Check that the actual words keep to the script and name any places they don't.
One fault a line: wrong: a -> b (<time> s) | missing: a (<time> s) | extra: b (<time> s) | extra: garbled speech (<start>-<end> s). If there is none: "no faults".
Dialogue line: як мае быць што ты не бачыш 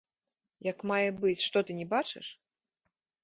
no faults